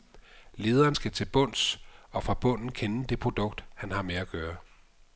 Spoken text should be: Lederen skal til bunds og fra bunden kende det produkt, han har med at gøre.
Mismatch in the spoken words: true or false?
false